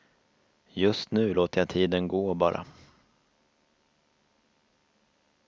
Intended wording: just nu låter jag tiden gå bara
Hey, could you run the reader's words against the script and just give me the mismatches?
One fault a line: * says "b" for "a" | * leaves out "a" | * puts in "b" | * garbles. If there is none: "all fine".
all fine